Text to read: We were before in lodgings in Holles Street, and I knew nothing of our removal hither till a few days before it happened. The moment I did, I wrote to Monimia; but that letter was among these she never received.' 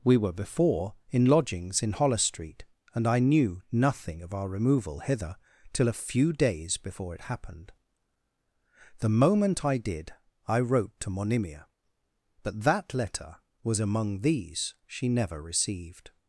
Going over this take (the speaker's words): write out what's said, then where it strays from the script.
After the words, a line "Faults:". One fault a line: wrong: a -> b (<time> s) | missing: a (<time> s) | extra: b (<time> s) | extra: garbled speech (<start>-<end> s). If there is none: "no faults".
We were before in lodgings in Holles Street, and I knew nothing of our removal hither till a few days before it happened. The moment I did, I wrote to Monimia; but that letter was among these she never received.'
Faults:
no faults